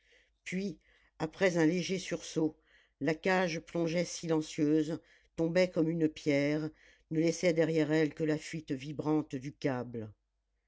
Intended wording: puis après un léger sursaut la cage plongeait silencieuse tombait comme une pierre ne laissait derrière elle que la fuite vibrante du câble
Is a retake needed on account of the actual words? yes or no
no